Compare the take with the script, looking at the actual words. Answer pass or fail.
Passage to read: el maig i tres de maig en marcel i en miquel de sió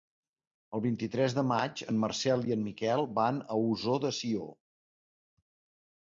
fail